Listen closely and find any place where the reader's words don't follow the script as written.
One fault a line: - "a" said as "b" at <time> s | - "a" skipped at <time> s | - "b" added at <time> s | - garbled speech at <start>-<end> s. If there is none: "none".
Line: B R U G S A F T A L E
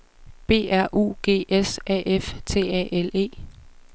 none